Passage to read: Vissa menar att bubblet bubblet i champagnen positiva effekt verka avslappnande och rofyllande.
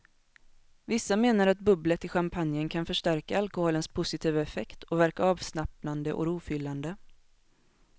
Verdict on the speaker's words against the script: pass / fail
fail